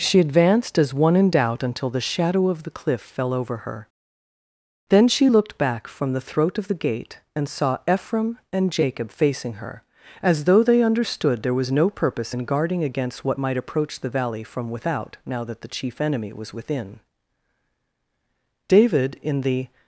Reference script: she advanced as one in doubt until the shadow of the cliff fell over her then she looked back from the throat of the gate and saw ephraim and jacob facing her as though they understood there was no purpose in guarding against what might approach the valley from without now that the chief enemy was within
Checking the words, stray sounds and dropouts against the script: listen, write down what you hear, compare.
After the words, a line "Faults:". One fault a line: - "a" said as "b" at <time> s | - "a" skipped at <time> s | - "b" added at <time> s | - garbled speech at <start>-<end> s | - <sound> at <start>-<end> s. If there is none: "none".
she advanced as one in doubt until the shadow of the cliff fell over her then she looked back from the throat of the gate and saw ephraim and jacob facing her as though they understood there was no purpose in guarding against what might approach the valley from without now that the chief enemy was within david in the
Faults:
- "david in the" added at 18.7 s